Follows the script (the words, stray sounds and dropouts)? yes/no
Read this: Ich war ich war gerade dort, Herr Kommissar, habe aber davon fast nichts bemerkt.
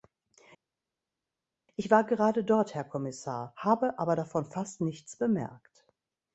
no